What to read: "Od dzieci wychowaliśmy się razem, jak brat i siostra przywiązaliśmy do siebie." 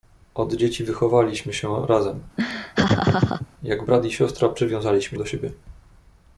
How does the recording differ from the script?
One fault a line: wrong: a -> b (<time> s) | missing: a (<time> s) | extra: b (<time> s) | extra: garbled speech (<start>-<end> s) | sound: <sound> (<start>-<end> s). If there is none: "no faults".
sound: laugh (2.4-3.5 s)